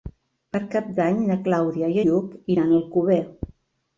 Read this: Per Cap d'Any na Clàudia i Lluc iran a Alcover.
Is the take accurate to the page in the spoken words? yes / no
yes